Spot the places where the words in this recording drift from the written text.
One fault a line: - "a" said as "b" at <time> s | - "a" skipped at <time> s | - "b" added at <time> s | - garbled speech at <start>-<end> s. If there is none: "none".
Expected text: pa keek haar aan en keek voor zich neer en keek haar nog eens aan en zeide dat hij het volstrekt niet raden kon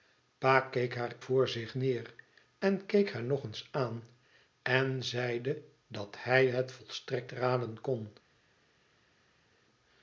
- "aan en keek" skipped at 1.1 s
- "niet" skipped at 7.3 s